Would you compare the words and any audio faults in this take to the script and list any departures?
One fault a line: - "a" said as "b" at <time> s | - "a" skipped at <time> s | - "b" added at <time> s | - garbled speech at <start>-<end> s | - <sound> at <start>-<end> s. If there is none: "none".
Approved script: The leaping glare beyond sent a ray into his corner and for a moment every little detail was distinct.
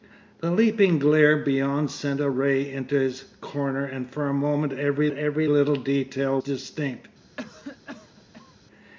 - "every" added at 5.1 s
- "was" skipped at 6.4 s
- cough at 7.4-8.6 s